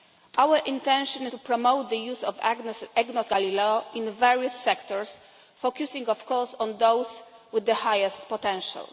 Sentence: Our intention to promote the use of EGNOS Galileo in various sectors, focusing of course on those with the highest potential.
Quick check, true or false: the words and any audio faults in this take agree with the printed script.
true